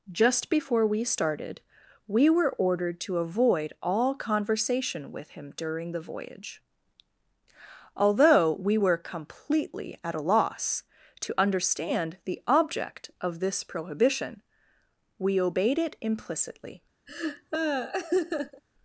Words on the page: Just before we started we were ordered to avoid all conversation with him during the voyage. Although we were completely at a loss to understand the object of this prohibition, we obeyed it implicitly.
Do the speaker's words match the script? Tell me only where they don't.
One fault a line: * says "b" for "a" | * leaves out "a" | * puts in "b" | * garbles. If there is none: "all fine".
all fine